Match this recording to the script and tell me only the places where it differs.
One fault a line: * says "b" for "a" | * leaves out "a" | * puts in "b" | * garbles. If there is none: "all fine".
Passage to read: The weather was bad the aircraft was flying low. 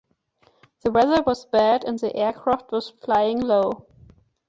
* puts in "and"